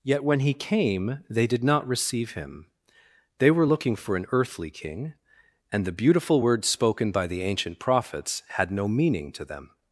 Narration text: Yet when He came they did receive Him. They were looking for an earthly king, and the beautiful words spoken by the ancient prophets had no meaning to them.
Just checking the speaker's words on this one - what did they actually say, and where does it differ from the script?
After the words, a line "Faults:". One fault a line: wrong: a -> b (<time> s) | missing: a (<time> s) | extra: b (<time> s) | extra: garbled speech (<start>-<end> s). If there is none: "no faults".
Yet when He came they did not receive Him. They were looking for an earthly king, and the beautiful words spoken by the ancient prophets had no meaning to them.
Faults:
extra: not (1.6 s)